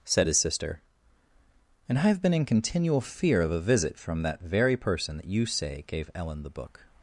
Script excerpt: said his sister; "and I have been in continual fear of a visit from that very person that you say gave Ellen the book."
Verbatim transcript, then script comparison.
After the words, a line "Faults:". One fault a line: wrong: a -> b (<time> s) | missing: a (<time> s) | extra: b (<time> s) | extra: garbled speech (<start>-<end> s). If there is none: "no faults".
said his sister; "and I have been in continual fear of a visit from that very person that you say gave Ellen the book."
Faults:
no faults